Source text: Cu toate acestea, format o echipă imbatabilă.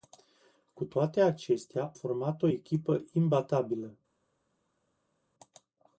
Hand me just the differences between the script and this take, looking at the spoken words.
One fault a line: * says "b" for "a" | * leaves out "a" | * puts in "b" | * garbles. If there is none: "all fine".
all fine